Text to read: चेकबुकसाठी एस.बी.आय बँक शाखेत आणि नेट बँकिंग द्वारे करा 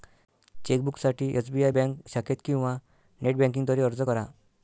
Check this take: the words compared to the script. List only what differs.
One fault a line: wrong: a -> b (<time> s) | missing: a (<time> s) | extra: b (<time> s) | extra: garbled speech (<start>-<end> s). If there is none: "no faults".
wrong: आणि -> किंवा (2.4 s)
extra: अर्ज (3.8 s)